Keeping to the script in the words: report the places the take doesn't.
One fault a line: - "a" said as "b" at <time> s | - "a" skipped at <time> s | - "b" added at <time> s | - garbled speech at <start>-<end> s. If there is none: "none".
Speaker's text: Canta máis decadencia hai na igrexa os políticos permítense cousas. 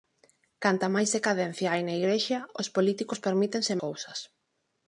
none